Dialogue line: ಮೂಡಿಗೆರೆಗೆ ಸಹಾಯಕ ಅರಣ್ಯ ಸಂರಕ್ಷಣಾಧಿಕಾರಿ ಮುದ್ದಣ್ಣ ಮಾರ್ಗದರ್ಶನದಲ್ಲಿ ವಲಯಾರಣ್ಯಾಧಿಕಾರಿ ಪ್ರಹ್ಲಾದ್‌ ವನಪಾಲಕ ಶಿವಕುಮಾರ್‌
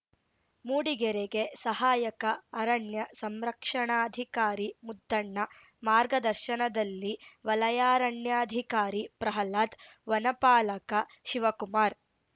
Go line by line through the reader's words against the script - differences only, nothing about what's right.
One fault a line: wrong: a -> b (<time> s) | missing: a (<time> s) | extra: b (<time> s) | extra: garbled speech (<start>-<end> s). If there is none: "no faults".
no faults